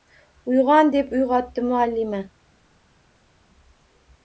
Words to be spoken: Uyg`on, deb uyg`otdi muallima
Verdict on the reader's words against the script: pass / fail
pass